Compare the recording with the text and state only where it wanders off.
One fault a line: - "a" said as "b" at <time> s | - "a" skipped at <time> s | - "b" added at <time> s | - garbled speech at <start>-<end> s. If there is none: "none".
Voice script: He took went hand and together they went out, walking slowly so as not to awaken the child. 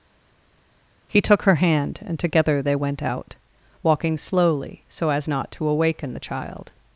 - "went" said as "her" at 1.4 s